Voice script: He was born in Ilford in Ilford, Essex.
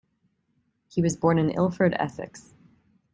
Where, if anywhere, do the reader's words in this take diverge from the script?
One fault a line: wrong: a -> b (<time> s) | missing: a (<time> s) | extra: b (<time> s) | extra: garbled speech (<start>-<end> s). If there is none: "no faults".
missing: in Ilford (1.9 s)